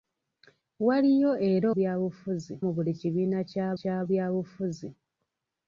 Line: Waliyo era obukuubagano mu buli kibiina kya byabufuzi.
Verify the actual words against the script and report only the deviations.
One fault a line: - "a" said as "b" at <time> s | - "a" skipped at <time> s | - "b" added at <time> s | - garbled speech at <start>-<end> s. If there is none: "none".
- "obukuubagano" said as "byabufuzi" at 1.8 s
- "kya" added at 3.8 s